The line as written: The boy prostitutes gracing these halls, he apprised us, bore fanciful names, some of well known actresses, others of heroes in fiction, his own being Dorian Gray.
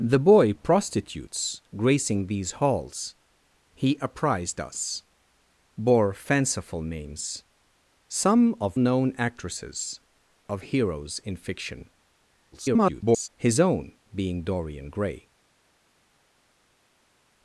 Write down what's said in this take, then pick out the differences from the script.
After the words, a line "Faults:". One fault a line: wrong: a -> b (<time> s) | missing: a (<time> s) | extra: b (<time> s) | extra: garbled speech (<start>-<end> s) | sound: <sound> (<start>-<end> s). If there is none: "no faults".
The boy prostitutes gracing these halls, he apprised us, bore fanciful names, some of known actresses, of heroes in fiction, [garbled] his own being Dorian Gray.
Faults:
missing: well (8.8 s)
missing: others (10.0 s)
extra: garbled speech (12.5-13.3 s)